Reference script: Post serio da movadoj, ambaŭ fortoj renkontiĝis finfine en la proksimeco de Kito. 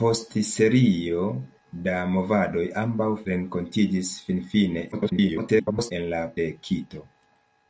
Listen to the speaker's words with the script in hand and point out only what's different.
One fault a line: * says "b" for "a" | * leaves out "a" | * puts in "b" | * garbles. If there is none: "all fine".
* leaves out "fortoj"
* garbles
* leaves out "proksimeco"